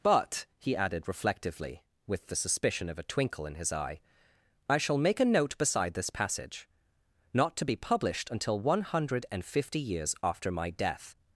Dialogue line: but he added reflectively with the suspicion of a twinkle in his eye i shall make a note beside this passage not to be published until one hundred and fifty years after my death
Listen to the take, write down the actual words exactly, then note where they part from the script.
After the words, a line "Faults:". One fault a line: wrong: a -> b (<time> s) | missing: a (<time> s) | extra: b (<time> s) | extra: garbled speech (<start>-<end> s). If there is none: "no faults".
but he added reflectively with the suspicion of a twinkle in his eye i shall make a note beside this passage not to be published until one hundred and fifty years after my death
Faults:
no faults